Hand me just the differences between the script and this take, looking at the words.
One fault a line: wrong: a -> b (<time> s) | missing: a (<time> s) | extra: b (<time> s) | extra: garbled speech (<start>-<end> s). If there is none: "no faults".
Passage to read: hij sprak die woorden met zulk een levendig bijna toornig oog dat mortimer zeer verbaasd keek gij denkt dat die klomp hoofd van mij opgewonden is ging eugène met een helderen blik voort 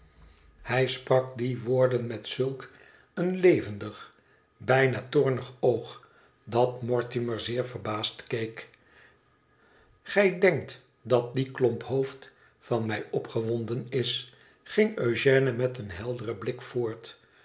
no faults